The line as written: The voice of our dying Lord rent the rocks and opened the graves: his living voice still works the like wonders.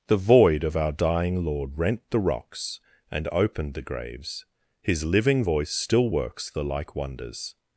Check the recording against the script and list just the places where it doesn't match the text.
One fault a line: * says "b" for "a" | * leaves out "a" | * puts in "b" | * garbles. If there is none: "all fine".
* says "void" for "voice"